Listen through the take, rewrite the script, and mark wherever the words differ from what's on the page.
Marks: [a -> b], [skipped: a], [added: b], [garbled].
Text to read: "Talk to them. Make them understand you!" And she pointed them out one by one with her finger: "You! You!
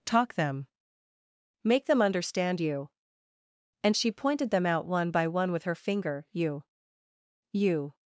"Talk [skipped: to] them. Make them understand you!" And she pointed them out one by one with her finger: "You! You!